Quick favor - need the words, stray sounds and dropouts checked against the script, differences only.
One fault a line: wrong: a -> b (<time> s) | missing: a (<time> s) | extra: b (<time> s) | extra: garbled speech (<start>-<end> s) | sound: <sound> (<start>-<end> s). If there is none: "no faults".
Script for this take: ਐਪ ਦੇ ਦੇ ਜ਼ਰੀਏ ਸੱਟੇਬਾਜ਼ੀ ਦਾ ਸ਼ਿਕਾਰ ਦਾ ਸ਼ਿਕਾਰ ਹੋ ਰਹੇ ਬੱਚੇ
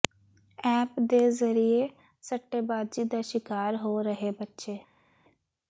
missing: ਦੇ (1.2 s)
missing: ਦਾ ਸ਼ਿਕਾਰ (3.8 s)